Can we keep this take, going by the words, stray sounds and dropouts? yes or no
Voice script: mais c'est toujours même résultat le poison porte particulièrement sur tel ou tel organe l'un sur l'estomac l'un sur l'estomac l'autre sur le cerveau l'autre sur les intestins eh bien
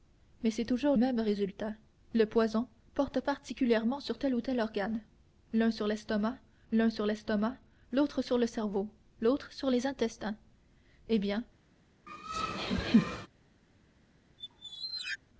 no